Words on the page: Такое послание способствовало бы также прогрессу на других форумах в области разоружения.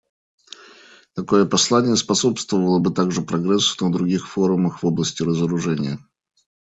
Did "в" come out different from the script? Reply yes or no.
no